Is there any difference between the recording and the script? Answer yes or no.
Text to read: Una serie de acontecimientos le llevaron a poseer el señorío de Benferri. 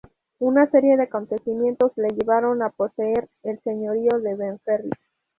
no